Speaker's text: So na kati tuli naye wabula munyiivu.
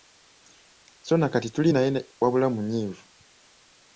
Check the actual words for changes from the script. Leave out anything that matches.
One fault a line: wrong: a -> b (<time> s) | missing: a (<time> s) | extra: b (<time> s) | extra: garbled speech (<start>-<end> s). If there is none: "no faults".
no faults